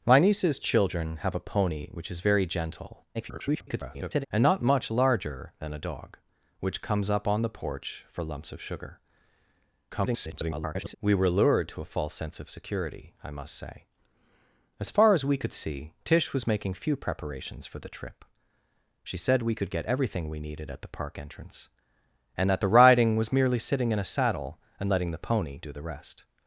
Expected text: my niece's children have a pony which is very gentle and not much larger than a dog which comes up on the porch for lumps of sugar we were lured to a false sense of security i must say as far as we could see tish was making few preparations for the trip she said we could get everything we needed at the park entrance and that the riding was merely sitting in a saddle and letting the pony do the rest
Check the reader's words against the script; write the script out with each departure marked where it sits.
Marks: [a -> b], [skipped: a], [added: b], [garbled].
my niece's children have a pony which is very gentle [garbled] and not much larger than a dog which comes up on the porch for lumps of sugar [garbled] we were lured to a false sense of security i must say as far as we could see tish was making few preparations for the trip she said we could get everything we needed at the park entrance and that the riding was merely sitting in a saddle and letting the pony do the rest